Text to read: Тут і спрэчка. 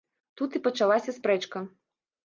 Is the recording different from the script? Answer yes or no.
yes